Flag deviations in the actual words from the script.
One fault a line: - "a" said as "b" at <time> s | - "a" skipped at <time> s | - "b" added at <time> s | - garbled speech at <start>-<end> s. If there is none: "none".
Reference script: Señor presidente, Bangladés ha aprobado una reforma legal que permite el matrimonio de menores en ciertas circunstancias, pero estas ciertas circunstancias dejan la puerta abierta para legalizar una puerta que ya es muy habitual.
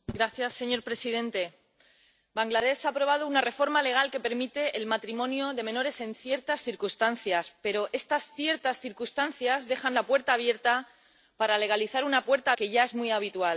none